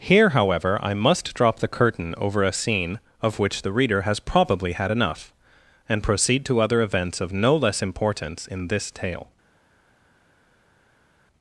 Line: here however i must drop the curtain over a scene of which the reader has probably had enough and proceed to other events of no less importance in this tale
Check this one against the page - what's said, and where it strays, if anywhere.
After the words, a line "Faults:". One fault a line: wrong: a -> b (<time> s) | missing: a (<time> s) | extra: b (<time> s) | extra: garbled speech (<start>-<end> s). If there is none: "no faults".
here however i must drop the curtain over a scene of which the reader has probably had enough and proceed to other events of no less importance in this tale
Faults:
no faults